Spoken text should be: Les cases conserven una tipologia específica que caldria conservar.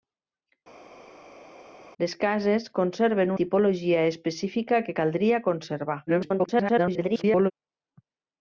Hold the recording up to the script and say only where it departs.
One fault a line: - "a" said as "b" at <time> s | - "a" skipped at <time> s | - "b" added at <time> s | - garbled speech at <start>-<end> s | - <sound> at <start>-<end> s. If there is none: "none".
- "una" skipped at 3.3 s
- garbled speech at 6.1-7.5 s